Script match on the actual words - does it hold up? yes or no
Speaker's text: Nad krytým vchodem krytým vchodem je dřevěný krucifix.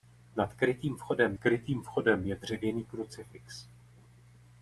yes